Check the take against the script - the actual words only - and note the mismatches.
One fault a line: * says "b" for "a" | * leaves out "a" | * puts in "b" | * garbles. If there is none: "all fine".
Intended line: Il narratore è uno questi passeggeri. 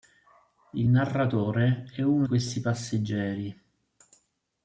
all fine